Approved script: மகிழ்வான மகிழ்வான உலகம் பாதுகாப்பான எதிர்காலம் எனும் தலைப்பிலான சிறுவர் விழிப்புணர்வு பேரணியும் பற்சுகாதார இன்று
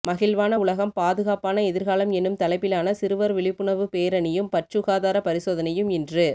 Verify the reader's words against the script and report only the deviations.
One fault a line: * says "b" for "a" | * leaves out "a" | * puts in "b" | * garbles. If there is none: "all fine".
* leaves out "மகிழ்வான"
* puts in "பரிசோதனையும்"